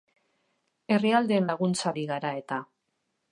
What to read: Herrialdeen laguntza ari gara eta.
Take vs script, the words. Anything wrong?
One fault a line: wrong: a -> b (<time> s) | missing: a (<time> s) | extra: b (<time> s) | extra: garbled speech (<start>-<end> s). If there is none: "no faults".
no faults